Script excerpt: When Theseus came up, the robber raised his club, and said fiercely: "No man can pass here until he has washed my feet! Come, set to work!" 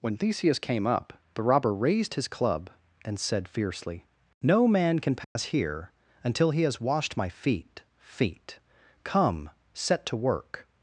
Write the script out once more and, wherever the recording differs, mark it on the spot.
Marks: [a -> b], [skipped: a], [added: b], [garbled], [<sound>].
When Theseus came up, the robber raised his club, and said fiercely: "No man can pass [dropout] here until he has washed my feet! [added: feet] Come, set to work!"